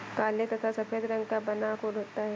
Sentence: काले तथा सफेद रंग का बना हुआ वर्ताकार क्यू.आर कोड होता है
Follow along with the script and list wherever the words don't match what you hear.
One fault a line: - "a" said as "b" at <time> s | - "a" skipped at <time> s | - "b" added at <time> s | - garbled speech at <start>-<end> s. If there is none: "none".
- "हुआ वर्ताकार क्यू.आर" skipped at 1.7 s